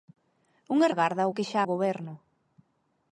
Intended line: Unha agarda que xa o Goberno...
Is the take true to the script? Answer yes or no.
yes